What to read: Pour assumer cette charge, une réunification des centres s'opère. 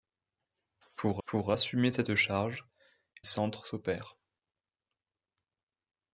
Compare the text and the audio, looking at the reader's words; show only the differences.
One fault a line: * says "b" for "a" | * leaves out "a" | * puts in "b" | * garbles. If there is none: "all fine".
* puts in "pour"
* leaves out "une réunification des"